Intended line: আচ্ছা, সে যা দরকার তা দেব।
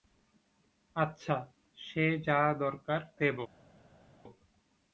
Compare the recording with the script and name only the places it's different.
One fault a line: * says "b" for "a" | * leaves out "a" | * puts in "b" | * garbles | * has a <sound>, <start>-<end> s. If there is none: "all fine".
* leaves out "তা"